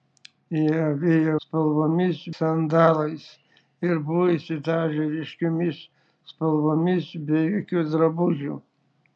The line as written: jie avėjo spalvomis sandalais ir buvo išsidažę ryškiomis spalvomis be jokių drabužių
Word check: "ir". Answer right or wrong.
right